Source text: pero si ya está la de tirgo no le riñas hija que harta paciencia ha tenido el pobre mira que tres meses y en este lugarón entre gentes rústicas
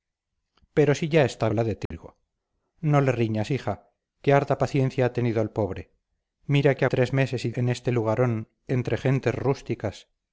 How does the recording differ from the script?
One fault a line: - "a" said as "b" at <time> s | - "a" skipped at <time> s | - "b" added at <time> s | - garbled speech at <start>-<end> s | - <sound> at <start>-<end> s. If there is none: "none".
- dropout at 1.9-1.9 s